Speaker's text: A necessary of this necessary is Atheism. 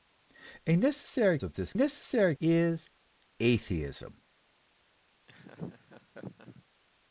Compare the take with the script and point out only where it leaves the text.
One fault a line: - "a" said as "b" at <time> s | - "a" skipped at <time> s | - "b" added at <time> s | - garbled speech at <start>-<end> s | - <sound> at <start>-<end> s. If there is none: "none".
- laugh at 5.3-6.6 s